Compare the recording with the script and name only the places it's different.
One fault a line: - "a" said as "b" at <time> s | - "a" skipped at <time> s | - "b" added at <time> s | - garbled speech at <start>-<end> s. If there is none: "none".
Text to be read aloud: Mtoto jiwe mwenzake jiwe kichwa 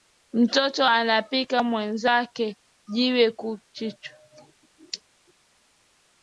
- "jiwe" said as "anapika" at 0.9 s
- "ku" added at 3.4 s